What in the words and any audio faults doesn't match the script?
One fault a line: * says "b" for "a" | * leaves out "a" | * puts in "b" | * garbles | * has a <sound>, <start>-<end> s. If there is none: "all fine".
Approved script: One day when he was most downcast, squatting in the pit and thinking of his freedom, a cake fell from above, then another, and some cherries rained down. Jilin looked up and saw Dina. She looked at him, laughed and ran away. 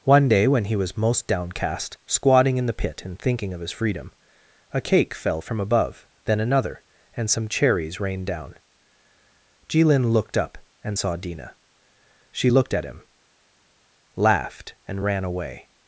all fine